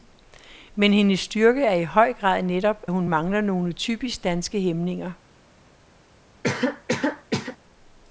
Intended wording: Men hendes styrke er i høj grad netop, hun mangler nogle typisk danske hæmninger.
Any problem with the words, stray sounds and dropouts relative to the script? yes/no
yes